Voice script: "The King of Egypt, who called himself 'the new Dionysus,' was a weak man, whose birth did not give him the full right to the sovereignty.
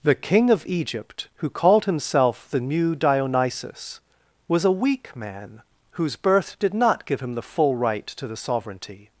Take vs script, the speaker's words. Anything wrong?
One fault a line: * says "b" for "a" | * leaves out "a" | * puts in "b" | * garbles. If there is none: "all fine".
all fine